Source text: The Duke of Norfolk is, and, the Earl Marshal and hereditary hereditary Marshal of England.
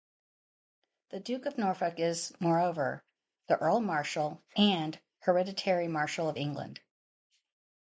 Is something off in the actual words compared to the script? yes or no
yes